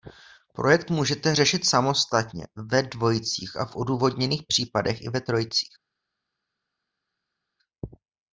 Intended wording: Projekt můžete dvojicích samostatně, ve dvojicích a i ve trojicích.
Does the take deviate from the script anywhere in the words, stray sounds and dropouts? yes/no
yes